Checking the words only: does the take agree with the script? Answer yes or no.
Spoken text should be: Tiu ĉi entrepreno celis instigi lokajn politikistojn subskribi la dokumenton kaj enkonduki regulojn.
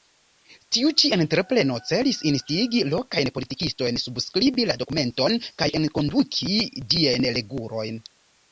no